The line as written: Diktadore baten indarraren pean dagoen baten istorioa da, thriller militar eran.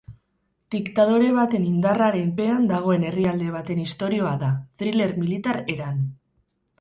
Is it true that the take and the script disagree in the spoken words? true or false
true